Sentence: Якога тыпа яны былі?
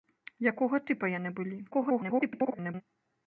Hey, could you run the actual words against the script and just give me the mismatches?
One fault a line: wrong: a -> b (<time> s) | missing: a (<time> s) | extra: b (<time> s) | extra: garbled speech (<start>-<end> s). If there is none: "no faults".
extra: garbled speech (1.7-2.8 s)